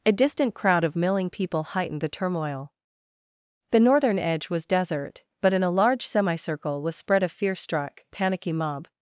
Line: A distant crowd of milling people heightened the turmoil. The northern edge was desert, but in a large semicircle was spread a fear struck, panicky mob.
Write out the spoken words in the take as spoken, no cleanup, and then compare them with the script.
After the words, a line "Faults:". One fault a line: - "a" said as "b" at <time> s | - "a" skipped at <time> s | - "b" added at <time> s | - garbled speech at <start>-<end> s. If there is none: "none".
A distant crowd of milling people heightened the turmoil. The northern edge was desert, but in a large semicircle was spread a fear struck, panicky mob.
Faults:
none